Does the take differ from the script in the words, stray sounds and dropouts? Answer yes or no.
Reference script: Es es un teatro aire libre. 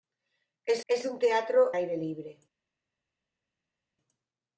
no